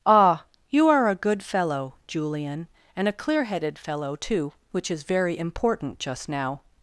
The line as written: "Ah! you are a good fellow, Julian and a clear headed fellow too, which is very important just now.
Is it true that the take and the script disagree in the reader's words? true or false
false